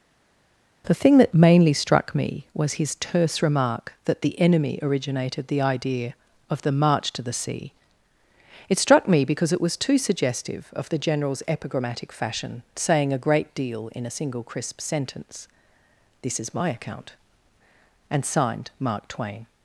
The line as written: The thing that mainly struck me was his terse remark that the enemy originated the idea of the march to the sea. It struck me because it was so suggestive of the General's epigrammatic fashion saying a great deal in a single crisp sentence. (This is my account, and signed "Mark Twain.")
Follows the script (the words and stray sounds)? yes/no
no